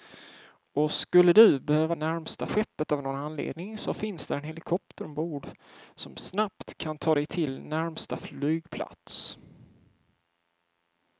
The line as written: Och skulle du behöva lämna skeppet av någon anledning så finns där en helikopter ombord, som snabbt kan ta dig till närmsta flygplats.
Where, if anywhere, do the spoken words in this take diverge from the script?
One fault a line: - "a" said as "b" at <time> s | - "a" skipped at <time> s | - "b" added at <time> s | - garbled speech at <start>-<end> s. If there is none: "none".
- "lämna" said as "närmsta" at 1.9 s